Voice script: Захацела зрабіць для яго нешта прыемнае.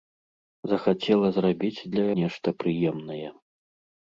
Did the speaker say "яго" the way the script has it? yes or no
no